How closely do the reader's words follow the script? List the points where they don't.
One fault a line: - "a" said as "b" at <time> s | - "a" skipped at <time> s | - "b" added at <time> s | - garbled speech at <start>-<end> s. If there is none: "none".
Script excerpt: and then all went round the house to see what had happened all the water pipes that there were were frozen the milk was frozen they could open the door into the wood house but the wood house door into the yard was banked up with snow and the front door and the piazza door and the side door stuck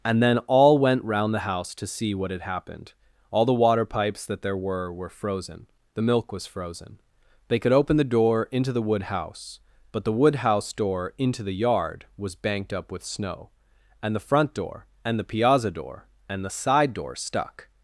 none